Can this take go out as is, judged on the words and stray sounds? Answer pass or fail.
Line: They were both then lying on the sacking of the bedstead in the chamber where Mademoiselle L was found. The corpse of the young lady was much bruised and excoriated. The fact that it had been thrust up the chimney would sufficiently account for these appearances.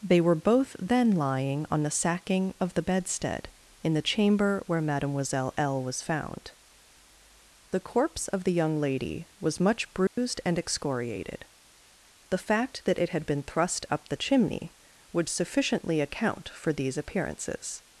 fail